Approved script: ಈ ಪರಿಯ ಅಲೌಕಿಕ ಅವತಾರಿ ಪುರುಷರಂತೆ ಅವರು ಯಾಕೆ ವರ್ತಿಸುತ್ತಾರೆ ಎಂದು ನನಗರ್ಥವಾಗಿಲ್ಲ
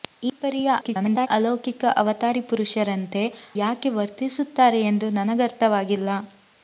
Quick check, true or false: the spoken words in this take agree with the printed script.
false